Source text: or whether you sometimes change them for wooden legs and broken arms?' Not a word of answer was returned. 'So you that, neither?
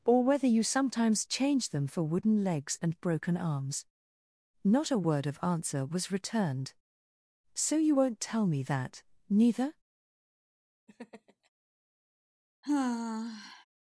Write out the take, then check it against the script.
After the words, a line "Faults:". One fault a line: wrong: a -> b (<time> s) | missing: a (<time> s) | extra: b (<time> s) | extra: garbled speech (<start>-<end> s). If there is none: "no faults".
or whether you sometimes change them for wooden legs and broken arms?' Not a word of answer was returned. 'So you won't tell me that, neither?
Faults:
extra: won't tell me (7.9 s)